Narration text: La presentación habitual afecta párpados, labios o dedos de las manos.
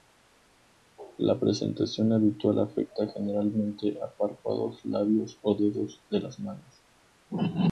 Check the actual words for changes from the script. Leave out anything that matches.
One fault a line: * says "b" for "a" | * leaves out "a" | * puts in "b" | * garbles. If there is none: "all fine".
* puts in "generalmente a"